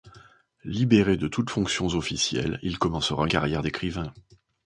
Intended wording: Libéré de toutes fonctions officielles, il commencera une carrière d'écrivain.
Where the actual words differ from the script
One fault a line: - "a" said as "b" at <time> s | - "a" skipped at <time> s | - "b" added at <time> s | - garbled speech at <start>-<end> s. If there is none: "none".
- "une" skipped at 3.3 s